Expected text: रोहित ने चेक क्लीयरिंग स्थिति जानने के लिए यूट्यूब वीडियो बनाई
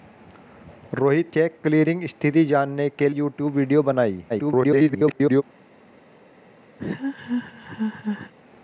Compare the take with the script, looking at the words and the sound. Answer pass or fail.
fail